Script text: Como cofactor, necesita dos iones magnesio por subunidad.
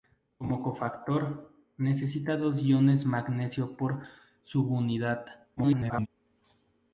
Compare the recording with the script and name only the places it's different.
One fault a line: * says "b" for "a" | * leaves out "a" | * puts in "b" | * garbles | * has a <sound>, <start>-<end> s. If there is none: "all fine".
* garbles